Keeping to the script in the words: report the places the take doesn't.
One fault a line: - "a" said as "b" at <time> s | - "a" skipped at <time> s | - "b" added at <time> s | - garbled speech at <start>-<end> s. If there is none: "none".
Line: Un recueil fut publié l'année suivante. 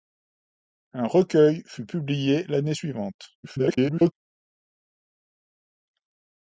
- garbled speech at 3.4-4.1 s